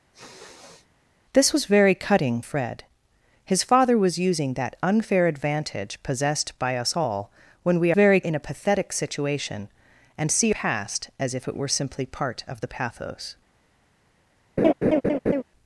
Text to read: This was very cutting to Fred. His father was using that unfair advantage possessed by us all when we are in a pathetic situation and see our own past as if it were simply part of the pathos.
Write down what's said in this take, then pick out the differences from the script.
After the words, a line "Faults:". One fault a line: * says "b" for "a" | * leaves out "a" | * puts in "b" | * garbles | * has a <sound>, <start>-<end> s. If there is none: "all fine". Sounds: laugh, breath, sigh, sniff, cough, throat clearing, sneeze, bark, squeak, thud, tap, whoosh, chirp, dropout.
This was very cutting Fred. His father was using that unfair advantage possessed by us all when we very in a pathetic situation and see past as if it were simply part of the pathos.
Faults:
* has a sniff, 0.1-0.9 s
* leaves out "to"
* says "very" for "are"
* leaves out "our own"
* has a laugh, 14.6-15.4 s